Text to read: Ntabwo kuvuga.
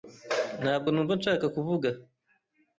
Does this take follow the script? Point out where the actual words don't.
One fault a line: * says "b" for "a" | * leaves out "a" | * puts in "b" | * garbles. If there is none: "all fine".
* puts in "numva nshaka"